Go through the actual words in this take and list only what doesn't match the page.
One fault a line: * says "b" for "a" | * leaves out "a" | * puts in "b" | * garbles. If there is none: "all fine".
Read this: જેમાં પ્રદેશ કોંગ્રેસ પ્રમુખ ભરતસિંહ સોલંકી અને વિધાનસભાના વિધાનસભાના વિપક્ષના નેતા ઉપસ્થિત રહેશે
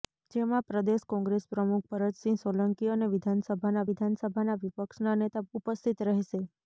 all fine